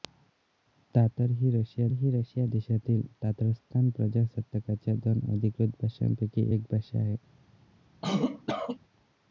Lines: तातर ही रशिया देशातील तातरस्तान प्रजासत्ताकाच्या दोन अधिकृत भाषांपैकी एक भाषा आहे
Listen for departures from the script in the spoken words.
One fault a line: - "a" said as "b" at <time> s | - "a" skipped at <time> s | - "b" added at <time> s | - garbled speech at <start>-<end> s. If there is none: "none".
- "ही रशिया" added at 1.9 s